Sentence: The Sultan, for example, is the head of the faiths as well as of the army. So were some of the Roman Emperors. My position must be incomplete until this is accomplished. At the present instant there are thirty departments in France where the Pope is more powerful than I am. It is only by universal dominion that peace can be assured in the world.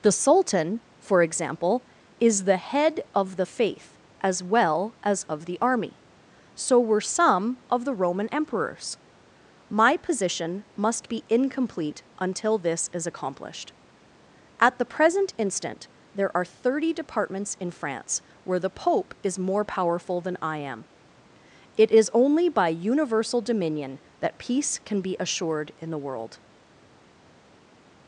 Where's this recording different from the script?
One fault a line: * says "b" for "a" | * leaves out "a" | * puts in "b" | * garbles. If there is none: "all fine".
* says "faith" for "faiths"